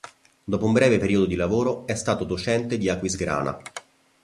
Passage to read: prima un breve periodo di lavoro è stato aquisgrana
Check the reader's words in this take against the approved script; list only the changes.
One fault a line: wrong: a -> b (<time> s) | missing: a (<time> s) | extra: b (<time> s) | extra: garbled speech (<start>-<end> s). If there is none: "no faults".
wrong: prima -> dopo (0.4 s)
extra: docente di (2.2 s)